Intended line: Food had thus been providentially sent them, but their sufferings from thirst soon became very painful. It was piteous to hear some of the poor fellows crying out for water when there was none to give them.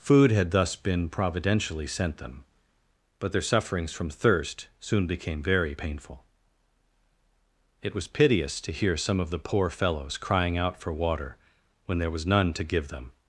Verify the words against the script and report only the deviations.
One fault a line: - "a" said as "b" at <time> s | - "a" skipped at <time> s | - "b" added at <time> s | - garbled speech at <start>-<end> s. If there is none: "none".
none